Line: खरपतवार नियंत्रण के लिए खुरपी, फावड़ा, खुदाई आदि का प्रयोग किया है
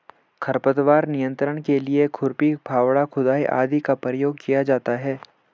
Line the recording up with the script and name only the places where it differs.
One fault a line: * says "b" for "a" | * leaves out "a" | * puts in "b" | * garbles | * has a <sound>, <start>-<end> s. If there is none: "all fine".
* puts in "जाता"